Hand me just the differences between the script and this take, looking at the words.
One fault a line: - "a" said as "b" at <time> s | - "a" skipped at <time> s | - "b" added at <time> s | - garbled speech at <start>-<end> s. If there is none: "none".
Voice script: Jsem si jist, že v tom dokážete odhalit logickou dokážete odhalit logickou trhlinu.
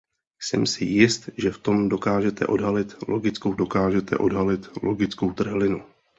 none